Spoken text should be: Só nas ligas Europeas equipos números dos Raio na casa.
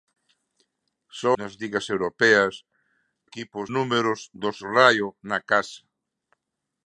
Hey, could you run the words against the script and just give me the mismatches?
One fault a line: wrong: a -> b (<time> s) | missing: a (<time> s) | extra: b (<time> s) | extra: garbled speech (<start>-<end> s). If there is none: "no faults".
no faults